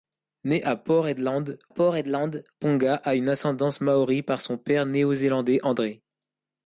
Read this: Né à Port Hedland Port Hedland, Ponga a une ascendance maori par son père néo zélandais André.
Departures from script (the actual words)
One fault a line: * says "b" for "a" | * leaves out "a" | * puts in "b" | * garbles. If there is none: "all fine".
all fine